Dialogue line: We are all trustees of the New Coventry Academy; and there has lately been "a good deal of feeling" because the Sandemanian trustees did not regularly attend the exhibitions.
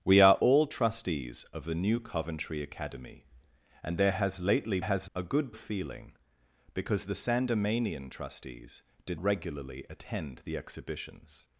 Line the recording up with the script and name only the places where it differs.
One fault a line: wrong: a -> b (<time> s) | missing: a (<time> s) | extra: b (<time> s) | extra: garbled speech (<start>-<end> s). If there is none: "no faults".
wrong: been -> has (4.8 s)
missing: deal (5.5 s)
missing: not (9.2 s)